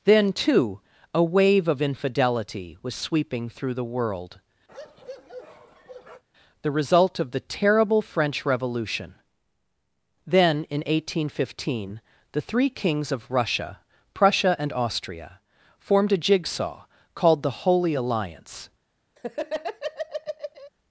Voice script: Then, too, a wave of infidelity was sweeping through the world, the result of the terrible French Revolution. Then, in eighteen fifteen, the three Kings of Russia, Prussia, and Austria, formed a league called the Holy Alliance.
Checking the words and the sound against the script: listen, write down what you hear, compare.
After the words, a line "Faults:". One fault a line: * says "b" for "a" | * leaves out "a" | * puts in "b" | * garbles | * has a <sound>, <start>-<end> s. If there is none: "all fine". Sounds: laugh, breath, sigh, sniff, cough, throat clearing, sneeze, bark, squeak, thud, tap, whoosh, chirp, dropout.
Then, too, a wave of infidelity was sweeping through the world, the result of the terrible French Revolution. Then, in eighteen fifteen, the three Kings of Russia, Prussia, and Austria, formed a jigsaw called the Holy Alliance.
Faults:
* has a bark, 4.7-6.2 s
* says "jigsaw" for "league"
* has a laugh, 19.2-20.7 s